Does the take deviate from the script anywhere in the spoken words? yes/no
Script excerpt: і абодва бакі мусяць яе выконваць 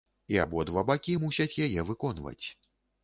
no